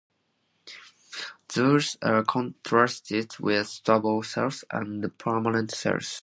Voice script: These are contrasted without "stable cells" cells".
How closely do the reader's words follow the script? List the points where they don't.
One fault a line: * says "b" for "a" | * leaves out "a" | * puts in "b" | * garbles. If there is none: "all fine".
* says "with" for "without"
* puts in "and permanent"